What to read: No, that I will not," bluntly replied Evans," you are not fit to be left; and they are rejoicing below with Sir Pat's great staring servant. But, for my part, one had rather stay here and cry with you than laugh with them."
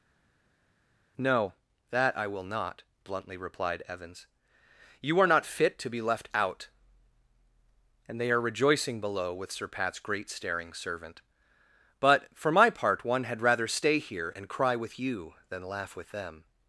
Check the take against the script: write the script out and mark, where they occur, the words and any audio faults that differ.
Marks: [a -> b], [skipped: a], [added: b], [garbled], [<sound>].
No, that I will not," bluntly replied Evans," you are not fit to be left; [added: out] and they are rejoicing below with Sir Pat's great staring servant. But, for my part, one had rather stay here and cry with you than laugh with them."